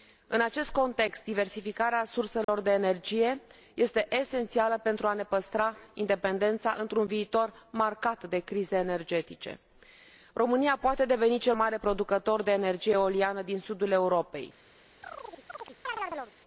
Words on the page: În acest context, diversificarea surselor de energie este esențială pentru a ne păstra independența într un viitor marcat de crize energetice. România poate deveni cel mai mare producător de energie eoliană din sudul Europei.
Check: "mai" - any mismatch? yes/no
yes